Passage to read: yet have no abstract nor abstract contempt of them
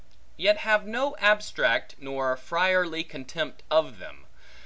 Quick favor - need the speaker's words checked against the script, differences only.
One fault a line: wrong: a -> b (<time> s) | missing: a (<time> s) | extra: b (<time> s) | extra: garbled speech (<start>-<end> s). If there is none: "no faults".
wrong: abstract -> friarly (2.4 s)